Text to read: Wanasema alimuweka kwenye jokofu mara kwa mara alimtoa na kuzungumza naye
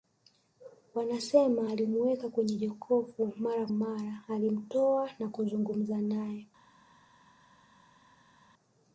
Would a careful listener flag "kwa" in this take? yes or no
yes